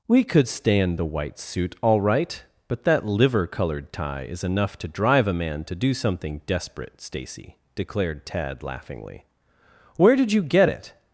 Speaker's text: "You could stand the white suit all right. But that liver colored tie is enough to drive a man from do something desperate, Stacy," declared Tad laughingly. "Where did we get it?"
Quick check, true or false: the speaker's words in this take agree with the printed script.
false